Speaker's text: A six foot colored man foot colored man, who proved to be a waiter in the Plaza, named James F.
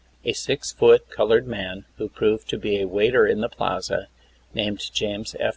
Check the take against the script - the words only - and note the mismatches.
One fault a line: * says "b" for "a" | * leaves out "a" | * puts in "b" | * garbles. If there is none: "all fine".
* leaves out "foot colored man"